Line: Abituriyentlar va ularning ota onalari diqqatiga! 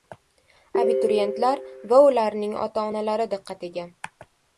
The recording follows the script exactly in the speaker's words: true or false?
true